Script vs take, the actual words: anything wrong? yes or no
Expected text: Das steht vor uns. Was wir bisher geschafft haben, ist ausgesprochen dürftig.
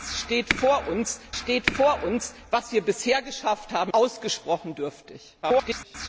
yes